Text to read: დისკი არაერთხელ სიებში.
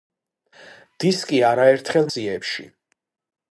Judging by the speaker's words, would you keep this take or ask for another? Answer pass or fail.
pass